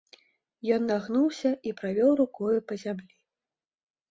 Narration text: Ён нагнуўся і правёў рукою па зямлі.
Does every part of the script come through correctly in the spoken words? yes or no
yes